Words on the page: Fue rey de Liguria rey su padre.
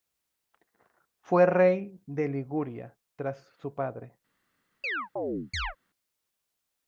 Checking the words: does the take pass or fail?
fail